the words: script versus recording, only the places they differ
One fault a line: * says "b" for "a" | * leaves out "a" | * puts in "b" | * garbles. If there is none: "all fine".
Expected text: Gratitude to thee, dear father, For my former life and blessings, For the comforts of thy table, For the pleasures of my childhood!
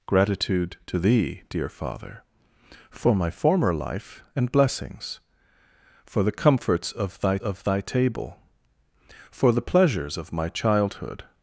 * puts in "of thy"